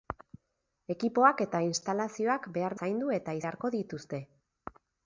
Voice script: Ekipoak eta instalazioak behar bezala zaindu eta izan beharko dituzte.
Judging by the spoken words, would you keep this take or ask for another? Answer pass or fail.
fail